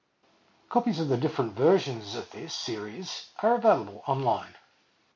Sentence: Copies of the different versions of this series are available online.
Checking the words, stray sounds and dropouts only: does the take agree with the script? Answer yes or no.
yes